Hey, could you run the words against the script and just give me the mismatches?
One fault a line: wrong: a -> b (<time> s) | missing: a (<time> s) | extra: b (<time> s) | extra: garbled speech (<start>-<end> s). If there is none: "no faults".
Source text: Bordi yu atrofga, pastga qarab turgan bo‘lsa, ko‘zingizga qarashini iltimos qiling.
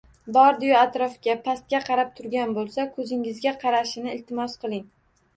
no faults